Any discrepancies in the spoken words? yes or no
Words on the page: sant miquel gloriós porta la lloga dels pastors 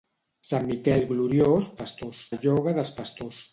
yes